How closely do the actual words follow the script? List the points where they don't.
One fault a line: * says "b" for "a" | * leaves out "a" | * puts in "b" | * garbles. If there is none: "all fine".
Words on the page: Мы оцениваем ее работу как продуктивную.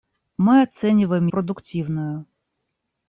* leaves out "ее работу как"